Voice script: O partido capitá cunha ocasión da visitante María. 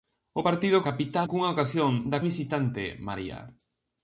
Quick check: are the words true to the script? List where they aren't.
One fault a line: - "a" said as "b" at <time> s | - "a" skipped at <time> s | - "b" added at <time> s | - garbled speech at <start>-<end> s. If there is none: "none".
none